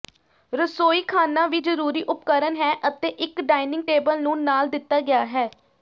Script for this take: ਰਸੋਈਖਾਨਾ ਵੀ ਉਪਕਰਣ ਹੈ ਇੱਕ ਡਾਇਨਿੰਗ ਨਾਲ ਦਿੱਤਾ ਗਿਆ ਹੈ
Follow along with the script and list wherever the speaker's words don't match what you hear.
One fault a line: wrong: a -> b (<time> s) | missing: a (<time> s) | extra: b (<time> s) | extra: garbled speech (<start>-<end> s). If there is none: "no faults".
extra: ਜ਼ਰੂਰੀ (1.6 s)
extra: ਅਤੇ (2.9 s)
extra: ਟੇਬਲ ਨੂੰ (3.9 s)